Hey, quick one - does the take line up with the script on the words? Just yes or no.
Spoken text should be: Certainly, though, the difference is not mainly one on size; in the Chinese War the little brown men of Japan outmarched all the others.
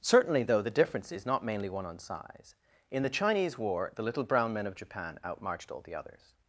yes